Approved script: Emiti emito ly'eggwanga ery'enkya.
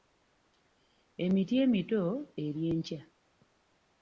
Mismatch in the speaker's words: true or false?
true